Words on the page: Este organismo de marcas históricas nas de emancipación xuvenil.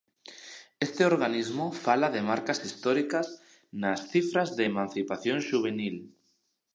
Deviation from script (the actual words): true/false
true